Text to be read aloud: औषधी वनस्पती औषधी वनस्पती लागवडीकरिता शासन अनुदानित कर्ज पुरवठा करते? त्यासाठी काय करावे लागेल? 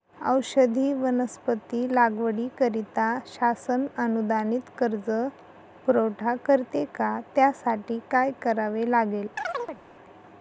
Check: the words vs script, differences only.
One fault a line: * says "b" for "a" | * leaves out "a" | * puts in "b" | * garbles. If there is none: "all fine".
* leaves out "औषधी वनस्पती"
* puts in "का"